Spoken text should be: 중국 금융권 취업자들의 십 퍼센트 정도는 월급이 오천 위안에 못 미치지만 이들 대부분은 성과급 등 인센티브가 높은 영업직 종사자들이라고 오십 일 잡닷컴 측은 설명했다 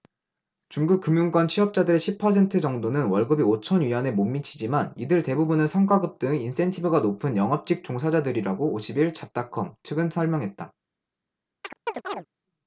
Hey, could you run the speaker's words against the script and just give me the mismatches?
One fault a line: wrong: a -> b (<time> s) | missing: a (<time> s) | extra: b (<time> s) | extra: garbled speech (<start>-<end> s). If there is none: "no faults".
no faults